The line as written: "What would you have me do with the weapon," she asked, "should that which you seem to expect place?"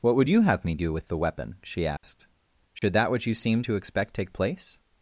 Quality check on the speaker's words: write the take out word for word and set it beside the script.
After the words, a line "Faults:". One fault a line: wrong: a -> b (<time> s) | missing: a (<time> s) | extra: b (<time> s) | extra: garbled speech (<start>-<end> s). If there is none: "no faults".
"What would you have me do with the weapon," she asked, "should that which you seem to expect take place?"
Faults:
extra: take (4.1 s)